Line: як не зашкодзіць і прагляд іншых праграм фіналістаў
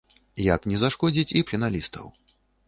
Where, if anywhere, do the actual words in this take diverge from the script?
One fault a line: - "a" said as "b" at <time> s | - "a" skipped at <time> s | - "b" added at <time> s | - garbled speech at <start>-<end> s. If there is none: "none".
- "прагляд іншых праграм" skipped at 1.4 s